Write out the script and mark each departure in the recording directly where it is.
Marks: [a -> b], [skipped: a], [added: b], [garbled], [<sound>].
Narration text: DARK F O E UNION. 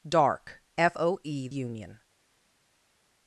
DARK F O E UNION.